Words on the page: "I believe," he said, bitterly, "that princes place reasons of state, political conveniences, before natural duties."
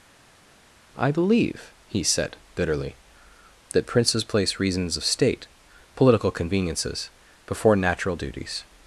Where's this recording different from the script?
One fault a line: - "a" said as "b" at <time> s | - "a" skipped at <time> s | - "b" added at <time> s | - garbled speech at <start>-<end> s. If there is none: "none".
none